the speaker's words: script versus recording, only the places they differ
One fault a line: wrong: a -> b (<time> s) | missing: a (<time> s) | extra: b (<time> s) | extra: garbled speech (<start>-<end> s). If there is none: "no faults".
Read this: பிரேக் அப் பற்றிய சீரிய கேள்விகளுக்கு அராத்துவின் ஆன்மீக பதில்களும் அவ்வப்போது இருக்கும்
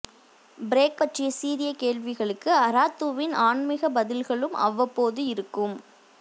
missing: அப் (1.0 s)